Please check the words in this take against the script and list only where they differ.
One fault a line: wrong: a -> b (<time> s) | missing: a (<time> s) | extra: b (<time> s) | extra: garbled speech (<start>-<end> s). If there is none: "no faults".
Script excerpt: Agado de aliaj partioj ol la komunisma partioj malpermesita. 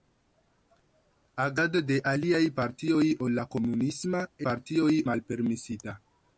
no faults